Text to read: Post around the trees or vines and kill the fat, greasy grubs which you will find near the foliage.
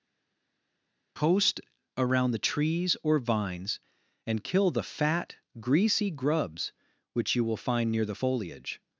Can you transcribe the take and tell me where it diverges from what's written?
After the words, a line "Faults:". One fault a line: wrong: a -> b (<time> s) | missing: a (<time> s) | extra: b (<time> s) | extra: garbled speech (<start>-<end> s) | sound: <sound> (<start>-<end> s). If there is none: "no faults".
Post around the trees or vines and kill the fat, greasy grubs which you will find near the foliage.
Faults:
no faults